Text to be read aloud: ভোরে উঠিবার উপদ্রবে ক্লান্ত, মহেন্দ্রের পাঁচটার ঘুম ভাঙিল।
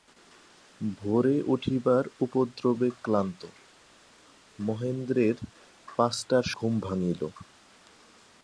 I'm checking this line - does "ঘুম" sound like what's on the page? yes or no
yes